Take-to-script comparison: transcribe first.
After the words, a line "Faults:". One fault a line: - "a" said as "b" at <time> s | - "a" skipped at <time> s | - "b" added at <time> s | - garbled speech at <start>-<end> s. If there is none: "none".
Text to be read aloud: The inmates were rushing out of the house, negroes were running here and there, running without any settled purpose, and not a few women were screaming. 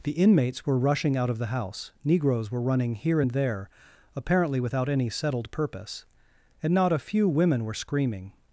The inmates were rushing out of the house, negroes were running here and there, apparently without any settled purpose, and not a few women were screaming.
Faults:
- "running" said as "apparently" at 4.1 s